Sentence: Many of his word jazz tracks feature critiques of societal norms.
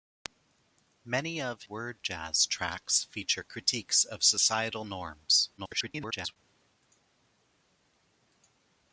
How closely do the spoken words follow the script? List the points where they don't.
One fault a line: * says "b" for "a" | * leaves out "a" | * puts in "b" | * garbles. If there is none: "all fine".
* leaves out "his"
* garbles